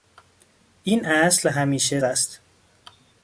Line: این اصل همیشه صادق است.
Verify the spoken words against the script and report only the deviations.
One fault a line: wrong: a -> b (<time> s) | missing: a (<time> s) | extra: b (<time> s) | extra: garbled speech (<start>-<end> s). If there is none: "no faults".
missing: صادق (2.0 s)